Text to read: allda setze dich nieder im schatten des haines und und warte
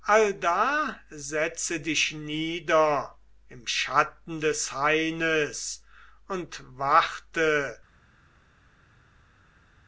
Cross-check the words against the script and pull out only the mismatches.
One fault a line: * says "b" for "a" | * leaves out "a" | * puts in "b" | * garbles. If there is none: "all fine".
* leaves out "und"